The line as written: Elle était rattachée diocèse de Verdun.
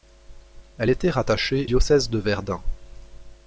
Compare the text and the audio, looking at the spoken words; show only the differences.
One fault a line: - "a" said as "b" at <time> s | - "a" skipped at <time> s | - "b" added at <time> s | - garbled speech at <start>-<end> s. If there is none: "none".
none